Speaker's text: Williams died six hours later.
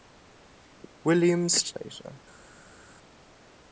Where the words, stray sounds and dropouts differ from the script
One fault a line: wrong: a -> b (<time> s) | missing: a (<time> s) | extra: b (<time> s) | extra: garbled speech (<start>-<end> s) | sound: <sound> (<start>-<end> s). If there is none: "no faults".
missing: died six hours (1.7 s)